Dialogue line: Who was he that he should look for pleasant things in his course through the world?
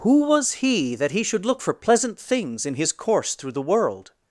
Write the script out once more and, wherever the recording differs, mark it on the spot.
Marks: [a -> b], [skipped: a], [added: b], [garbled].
Who was he that he should look for pleasant things in his course through the world?